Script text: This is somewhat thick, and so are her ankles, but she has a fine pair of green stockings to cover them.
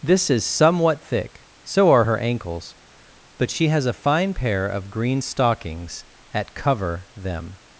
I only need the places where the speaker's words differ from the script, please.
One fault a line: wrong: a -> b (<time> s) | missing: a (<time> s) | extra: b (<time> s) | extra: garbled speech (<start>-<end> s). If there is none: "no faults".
missing: and (1.4 s)
wrong: to -> at (6.3 s)